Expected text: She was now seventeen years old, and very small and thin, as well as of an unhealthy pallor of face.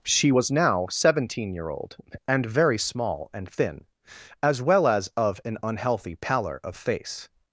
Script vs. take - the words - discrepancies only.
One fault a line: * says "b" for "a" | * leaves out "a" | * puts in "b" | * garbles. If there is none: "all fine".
* says "year" for "years"